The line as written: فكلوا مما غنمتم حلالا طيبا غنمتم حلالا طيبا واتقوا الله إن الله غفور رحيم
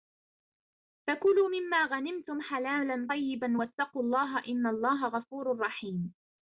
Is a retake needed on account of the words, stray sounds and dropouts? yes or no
yes